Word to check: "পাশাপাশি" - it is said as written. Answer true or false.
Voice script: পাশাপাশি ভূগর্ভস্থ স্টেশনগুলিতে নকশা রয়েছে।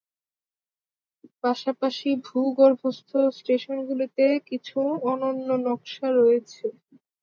true